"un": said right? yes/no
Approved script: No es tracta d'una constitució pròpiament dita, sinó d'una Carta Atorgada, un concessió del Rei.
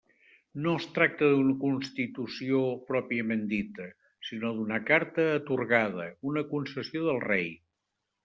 no